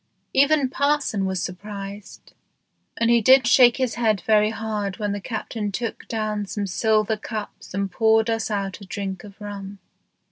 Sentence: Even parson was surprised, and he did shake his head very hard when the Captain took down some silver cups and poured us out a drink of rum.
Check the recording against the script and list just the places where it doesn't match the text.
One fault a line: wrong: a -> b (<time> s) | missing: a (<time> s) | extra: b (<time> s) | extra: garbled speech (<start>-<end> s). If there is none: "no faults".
no faults